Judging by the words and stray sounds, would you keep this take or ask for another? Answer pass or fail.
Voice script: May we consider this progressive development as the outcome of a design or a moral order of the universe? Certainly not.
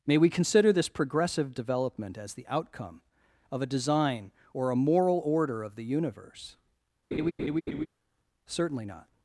fail